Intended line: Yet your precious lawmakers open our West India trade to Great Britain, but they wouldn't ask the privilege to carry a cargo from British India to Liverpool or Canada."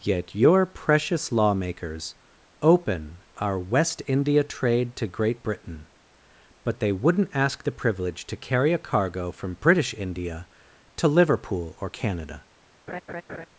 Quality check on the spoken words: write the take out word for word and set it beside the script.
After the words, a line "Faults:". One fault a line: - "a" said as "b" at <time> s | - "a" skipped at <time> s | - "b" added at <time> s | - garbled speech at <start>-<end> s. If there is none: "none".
Yet your precious lawmakers open our West India trade to Great Britain, but they wouldn't ask the privilege to carry a cargo from British India to Liverpool or Canada."
Faults:
none